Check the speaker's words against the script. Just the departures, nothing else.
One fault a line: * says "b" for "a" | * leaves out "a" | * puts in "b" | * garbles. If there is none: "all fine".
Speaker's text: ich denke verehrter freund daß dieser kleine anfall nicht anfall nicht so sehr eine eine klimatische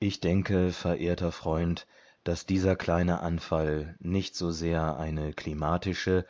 * leaves out "anfall nicht"
* leaves out "eine"